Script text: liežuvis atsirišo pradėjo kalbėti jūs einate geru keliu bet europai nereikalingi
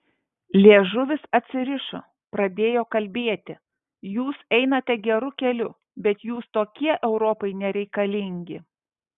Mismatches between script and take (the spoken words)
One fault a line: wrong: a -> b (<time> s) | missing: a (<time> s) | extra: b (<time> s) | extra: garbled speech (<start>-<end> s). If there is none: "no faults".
extra: jūs tokie (6.3 s)